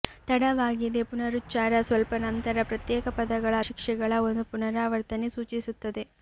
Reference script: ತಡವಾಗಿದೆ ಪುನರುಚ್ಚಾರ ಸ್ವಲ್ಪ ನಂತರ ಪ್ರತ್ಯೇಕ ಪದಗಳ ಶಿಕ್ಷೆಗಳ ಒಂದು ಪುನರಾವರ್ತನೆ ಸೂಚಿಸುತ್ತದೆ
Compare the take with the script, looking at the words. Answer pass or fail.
pass